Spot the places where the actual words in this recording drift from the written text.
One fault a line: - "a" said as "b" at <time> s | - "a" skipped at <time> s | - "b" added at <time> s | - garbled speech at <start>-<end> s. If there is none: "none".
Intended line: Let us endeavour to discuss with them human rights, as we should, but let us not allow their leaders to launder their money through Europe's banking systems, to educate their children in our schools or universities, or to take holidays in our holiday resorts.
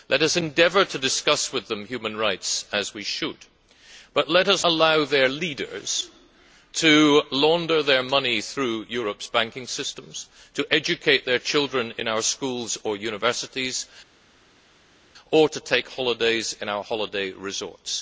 - "not" skipped at 4.6 s